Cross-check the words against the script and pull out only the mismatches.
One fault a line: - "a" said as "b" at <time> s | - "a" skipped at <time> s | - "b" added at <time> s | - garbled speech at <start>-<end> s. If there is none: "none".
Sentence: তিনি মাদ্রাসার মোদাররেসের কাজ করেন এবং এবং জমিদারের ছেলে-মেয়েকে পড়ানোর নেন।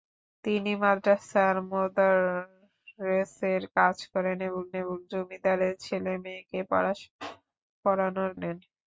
none